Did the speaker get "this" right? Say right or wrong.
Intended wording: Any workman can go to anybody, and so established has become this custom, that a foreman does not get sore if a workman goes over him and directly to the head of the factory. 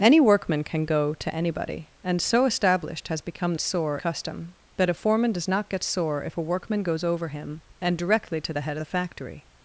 wrong